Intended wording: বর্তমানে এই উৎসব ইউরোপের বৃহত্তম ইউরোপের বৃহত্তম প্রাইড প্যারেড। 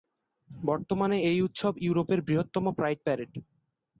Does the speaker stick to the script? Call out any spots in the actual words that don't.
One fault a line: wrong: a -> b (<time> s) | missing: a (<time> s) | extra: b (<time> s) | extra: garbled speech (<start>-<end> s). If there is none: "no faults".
missing: ইউরোপের বৃহত্তম (2.6 s)